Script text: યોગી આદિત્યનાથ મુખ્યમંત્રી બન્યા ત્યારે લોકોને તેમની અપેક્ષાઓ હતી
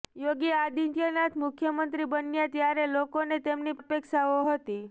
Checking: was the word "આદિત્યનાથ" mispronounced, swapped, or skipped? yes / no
no